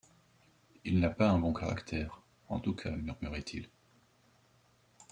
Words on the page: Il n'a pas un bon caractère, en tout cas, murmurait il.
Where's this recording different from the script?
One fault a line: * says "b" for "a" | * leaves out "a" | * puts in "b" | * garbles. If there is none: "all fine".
all fine